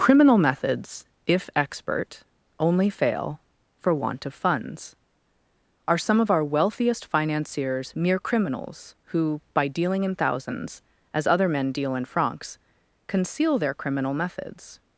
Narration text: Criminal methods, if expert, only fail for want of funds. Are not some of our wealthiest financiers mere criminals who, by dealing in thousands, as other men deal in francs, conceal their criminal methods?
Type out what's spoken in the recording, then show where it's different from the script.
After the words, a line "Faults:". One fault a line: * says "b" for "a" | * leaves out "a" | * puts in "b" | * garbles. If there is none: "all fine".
Criminal methods, if expert, only fail for want of funds. Are some of our wealthiest financiers mere criminals who, by dealing in thousands, as other men deal in francs, conceal their criminal methods?
Faults:
* leaves out "not"